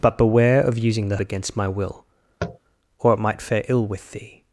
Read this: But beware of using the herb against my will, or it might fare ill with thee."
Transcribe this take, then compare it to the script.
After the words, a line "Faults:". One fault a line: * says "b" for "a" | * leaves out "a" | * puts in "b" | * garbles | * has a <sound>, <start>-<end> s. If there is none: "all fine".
But beware of using the against my will, or it might fare ill with thee."
Faults:
* leaves out "herb"
* has a tap, 2.4-2.6 s